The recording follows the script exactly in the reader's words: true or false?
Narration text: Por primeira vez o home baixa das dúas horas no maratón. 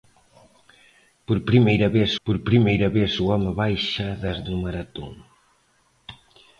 false